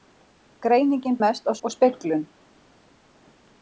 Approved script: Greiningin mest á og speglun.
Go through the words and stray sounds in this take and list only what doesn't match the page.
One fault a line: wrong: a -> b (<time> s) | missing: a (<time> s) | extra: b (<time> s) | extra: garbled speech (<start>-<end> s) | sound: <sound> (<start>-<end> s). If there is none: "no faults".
no faults